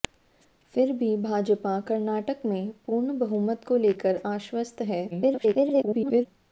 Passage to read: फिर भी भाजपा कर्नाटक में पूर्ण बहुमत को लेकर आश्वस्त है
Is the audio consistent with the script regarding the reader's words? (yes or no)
no